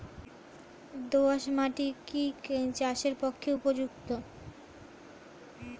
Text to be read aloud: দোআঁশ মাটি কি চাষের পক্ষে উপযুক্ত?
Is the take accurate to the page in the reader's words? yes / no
yes